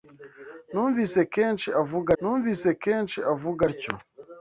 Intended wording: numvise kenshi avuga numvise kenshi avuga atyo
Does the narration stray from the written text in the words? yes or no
no